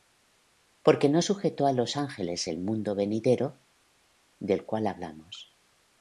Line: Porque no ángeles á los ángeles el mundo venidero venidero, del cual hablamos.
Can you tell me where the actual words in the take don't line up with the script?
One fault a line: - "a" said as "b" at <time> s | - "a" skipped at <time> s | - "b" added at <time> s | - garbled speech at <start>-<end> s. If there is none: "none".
- "ángeles" said as "sujetó" at 1.2 s
- "venidero" skipped at 3.6 s